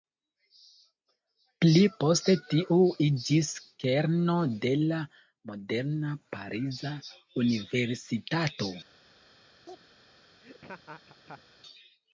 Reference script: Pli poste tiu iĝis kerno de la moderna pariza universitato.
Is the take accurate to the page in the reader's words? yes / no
yes